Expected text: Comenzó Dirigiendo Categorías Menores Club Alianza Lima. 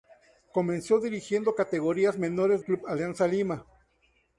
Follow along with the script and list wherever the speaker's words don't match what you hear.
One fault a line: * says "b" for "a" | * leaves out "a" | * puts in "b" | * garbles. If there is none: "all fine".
all fine